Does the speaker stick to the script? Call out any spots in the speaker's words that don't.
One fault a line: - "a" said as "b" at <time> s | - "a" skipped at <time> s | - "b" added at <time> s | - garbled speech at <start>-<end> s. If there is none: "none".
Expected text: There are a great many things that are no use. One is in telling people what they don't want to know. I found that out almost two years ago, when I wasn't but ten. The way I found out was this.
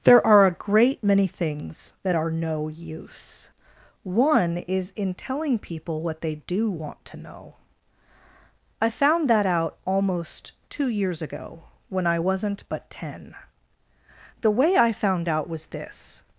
- "don't" said as "do" at 6.3 s